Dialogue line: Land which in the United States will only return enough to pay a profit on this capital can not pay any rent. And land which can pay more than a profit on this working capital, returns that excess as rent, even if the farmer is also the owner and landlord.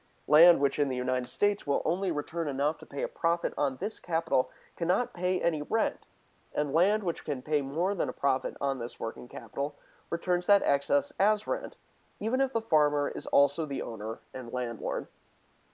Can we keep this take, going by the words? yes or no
yes